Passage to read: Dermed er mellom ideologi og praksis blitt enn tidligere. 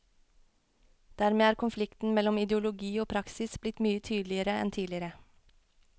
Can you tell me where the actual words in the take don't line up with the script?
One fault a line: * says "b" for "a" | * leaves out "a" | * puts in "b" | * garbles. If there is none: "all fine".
* puts in "konflikten"
* puts in "mye tydeligere"